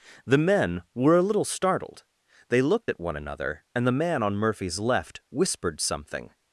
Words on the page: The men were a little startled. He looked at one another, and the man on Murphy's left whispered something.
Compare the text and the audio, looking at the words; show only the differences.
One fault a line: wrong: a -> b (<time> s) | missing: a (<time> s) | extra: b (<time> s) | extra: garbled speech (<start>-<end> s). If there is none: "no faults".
wrong: He -> They (2.5 s)